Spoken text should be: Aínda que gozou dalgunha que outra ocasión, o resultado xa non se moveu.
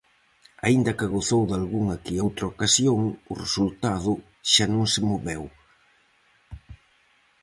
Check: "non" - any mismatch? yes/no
no